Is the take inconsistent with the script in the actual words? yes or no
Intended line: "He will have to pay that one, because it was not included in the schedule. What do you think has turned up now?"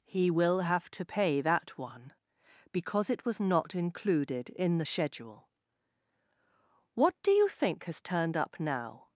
no